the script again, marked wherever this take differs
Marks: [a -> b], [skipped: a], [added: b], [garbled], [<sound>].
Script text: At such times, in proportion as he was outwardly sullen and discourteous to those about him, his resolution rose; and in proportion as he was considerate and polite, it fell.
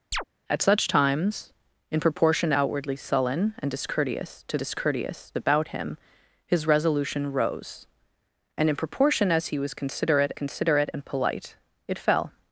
[chirp] At such times, in proportion [skipped: as he was] outwardly sullen and discourteous to [those -> discourteous] about him, his resolution rose; and in proportion as he was considerate [added: considerate] and polite, it fell.